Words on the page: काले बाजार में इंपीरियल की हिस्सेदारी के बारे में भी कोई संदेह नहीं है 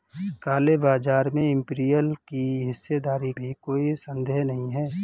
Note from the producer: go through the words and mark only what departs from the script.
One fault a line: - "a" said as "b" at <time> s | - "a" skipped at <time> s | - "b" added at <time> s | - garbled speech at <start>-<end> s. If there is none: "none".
- "के बारे में" skipped at 3.3 s